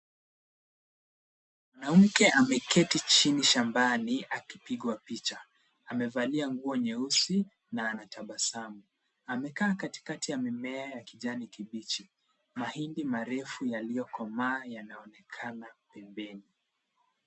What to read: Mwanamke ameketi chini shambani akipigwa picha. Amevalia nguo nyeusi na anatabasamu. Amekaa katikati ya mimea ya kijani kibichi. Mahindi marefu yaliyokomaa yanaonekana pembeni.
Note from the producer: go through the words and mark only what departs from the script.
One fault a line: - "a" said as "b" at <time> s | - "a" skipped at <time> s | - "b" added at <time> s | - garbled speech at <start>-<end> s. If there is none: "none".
none